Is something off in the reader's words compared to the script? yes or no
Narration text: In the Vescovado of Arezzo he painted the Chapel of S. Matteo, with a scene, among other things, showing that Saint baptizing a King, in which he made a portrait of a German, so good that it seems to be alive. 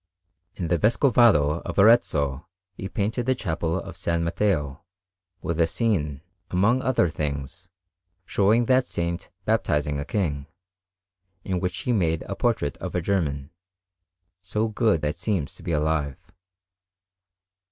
yes